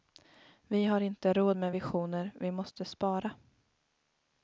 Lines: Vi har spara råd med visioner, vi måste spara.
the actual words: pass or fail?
fail